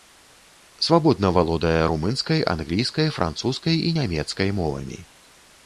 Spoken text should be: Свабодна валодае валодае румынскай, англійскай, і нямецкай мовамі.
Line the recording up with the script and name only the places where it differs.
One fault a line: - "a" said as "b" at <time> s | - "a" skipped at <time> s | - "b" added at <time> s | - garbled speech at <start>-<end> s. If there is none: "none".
- "валодае" skipped at 1.8 s
- "французскай" added at 3.2 s